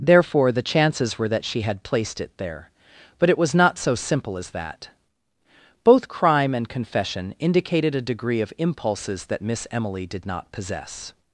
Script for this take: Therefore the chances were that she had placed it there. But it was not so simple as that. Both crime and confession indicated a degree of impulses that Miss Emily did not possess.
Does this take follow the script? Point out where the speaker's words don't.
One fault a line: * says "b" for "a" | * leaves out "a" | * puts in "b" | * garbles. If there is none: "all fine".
all fine